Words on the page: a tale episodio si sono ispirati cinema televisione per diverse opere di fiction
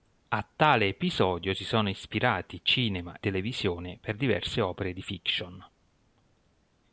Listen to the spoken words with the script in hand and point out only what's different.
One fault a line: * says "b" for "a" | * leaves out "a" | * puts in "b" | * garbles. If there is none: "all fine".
all fine